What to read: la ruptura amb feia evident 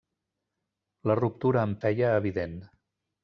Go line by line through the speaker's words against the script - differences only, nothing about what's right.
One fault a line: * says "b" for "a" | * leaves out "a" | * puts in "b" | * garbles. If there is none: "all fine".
all fine